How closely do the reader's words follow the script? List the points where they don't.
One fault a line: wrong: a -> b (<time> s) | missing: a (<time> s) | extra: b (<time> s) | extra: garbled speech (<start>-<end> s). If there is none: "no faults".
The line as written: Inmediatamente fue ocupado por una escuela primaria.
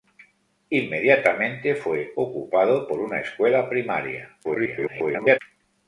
extra: garbled speech (4.4-5.4 s)